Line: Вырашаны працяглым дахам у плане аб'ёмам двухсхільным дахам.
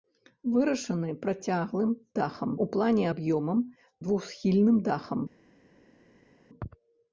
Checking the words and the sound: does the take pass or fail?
pass